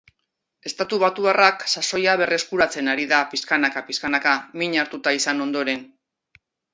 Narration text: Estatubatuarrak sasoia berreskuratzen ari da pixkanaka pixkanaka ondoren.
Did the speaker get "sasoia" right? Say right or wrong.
right